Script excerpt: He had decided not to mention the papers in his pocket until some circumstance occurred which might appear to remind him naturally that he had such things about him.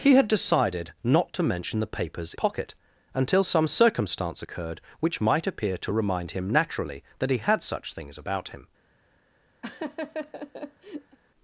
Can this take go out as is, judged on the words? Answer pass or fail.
fail